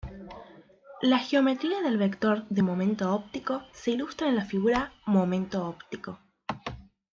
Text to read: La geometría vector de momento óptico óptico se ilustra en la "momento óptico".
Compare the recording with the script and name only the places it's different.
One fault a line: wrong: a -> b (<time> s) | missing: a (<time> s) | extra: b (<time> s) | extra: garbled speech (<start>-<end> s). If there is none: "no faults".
extra: del (1.8 s)
missing: óptico (3.6 s)
extra: figura (4.4 s)